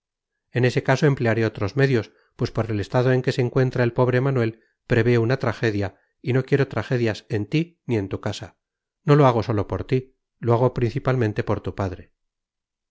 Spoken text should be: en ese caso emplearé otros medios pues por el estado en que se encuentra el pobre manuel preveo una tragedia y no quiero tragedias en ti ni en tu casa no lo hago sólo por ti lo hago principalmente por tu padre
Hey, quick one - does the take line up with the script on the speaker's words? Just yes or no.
yes